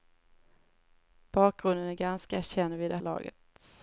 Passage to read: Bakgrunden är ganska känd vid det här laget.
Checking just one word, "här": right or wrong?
wrong